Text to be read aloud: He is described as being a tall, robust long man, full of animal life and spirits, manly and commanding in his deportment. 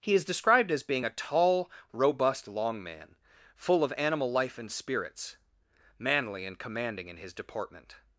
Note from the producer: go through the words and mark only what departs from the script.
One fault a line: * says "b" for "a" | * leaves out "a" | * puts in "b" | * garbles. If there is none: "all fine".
all fine